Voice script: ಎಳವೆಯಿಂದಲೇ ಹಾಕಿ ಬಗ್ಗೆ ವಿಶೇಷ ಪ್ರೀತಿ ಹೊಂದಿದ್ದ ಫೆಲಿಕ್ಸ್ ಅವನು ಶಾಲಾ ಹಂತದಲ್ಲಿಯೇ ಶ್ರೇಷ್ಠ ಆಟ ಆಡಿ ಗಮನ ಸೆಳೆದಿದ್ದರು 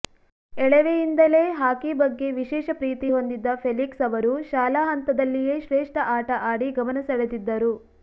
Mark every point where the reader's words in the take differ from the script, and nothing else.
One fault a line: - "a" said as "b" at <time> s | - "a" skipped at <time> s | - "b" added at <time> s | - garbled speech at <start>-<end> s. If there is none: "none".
- "ಅವನು" said as "ಅವರು" at 4.1 s